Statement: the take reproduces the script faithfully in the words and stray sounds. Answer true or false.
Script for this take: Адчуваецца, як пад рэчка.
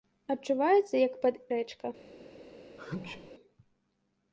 false